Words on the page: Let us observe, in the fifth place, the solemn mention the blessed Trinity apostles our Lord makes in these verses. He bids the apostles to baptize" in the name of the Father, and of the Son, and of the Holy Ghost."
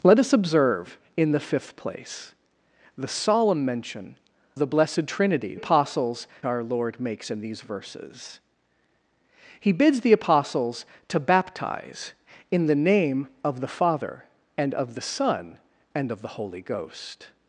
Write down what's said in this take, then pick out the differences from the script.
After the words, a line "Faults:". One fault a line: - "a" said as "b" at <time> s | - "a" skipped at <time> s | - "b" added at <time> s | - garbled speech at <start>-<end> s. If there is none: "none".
Let us observe, in the fifth place, the solemn mention the blessed Trinity apostles our Lord makes in these verses. He bids the apostles to baptize" in the name of the Father, and of the Son, and of the Holy Ghost."
Faults:
none